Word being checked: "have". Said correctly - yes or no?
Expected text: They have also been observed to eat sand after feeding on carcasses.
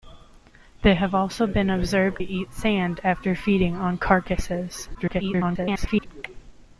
yes